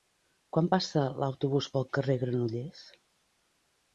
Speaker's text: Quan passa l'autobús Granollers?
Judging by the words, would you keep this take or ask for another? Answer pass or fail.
fail